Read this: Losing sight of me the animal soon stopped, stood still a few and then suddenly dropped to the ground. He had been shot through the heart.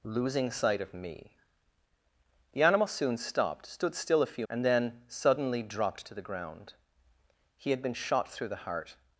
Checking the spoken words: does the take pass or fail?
pass